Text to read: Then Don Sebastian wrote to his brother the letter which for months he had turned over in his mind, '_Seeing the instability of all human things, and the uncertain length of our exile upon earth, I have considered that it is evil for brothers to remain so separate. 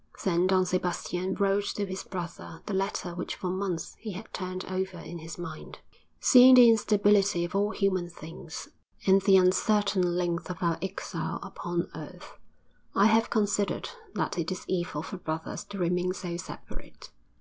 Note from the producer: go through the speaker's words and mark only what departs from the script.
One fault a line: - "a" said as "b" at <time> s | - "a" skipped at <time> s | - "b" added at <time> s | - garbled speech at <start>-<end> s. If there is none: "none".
none